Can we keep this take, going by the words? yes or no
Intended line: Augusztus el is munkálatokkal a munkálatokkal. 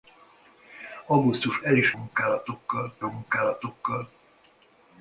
yes